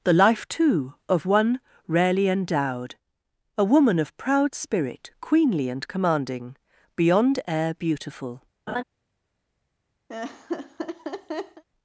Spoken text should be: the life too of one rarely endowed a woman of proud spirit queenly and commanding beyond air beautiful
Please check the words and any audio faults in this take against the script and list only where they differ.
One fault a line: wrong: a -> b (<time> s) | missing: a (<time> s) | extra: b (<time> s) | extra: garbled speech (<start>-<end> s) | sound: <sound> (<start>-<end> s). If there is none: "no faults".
sound: laugh (8.7-8.8 s)
sound: laugh (10.1-11.6 s)